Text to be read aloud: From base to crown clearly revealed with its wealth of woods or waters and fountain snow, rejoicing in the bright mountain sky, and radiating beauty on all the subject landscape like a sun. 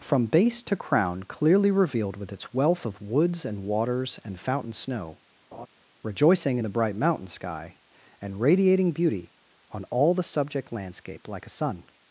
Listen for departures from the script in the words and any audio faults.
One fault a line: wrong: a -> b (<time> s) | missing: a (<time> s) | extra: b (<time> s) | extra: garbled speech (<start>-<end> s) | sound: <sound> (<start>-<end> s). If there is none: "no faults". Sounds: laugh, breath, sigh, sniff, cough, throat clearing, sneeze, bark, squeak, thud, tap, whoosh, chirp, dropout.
wrong: or -> and (3.5 s)
sound: laugh (5.5-5.7 s)